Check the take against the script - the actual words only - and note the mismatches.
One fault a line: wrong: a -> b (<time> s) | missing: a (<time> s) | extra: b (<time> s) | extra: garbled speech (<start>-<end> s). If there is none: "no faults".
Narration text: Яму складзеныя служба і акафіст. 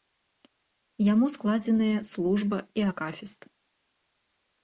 no faults